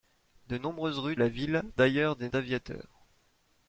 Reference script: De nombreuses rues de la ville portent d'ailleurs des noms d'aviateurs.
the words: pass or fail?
fail